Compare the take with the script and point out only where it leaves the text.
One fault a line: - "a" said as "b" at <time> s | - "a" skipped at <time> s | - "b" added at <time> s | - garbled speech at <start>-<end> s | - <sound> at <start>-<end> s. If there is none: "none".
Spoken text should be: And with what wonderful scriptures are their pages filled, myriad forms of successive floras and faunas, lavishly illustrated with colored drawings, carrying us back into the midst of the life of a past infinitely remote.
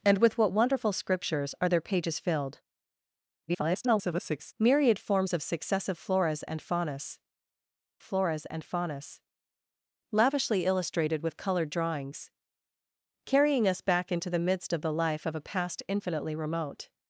- garbled speech at 3.5-4.5 s
- "floras and faunas" added at 8.0 s